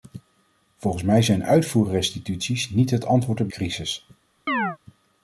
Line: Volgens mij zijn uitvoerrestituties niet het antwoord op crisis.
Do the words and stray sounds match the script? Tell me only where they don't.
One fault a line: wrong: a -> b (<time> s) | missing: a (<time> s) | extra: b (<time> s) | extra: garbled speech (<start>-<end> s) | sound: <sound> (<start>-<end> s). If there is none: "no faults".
sound: chirp (4.5-4.8 s)